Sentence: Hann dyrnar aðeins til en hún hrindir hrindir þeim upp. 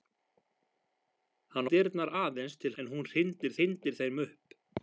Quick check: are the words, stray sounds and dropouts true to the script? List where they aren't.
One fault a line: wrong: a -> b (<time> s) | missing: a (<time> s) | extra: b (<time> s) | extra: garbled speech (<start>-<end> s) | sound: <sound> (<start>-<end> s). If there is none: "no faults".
no faults